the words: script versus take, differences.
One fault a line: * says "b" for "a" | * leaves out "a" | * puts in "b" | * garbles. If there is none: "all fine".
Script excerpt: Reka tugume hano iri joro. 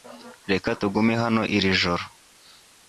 all fine